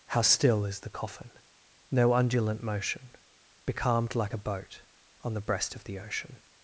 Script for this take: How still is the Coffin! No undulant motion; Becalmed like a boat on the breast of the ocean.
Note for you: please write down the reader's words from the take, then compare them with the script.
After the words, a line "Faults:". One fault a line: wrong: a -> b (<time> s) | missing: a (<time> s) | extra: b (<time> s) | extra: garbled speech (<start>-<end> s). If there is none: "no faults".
How still is the Coffin! No undulant motion; Becalmed like a boat on the breast of the ocean.
Faults:
no faults